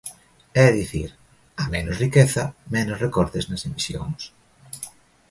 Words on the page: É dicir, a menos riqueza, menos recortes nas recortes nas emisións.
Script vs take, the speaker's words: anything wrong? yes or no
yes